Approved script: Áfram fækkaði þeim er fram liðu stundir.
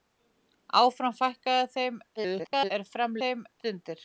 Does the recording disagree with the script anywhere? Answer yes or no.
yes